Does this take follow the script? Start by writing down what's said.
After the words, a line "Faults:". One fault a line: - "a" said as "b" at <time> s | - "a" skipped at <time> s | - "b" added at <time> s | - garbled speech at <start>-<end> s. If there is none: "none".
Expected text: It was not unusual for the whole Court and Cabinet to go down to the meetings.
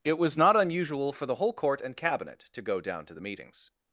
It was not unusual for the whole Court and Cabinet to go down to the meetings.
Faults:
none